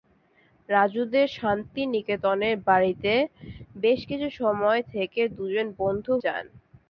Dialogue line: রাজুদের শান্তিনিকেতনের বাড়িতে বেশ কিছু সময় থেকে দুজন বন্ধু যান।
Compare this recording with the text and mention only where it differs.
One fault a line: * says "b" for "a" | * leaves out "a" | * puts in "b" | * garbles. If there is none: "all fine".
all fine